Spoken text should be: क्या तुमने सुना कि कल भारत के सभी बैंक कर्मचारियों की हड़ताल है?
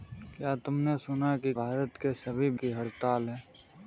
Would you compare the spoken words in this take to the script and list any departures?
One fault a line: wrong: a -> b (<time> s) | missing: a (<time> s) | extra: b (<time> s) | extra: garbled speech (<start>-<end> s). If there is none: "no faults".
missing: कल (1.5 s)
missing: बैंक कर्मचारियों (2.5 s)